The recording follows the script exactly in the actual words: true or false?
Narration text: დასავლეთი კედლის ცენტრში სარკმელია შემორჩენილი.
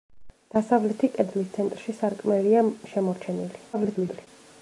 false